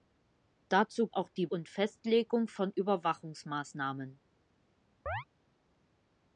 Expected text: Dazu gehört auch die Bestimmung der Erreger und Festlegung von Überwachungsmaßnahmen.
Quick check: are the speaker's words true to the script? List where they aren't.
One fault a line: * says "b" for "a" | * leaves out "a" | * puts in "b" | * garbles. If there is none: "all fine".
* leaves out "gehört"
* leaves out "Bestimmung der Erreger"